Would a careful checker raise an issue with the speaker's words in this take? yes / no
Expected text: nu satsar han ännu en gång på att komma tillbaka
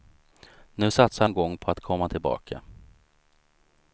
yes